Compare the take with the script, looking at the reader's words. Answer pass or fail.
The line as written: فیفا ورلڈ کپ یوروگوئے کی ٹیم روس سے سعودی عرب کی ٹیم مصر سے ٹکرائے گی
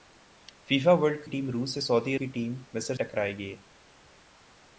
fail